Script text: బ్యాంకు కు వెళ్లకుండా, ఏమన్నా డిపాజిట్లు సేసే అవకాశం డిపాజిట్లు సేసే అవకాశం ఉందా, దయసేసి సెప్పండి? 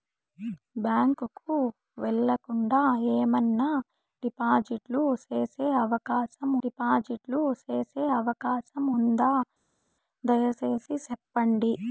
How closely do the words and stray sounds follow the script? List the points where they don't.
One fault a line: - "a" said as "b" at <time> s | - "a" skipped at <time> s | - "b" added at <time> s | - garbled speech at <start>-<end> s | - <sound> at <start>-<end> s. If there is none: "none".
none